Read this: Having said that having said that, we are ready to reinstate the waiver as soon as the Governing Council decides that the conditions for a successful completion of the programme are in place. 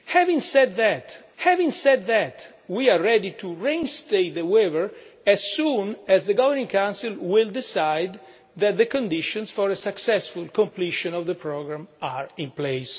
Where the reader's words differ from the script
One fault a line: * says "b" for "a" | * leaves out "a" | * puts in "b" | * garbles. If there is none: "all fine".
all fine